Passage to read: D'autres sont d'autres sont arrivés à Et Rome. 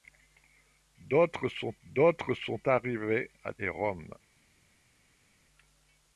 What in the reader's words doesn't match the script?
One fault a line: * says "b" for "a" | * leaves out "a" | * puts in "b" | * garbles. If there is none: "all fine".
all fine